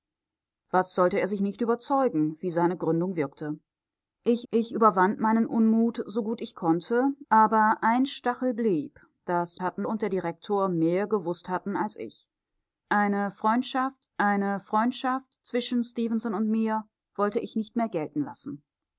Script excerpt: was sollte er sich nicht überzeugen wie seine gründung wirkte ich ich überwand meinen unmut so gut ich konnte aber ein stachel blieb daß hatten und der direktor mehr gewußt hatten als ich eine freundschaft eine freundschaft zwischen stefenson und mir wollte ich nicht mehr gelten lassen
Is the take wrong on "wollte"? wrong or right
right